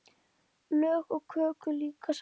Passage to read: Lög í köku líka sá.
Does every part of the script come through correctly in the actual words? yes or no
yes